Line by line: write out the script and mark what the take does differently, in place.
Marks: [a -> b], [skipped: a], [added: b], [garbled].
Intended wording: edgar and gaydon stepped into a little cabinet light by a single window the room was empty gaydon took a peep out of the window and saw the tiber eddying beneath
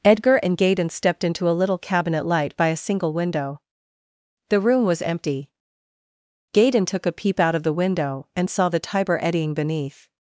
edgar and gaydon stepped into a little cabinet light by a single window the room was empty gaydon took a peep out of the window and saw the tiber eddying beneath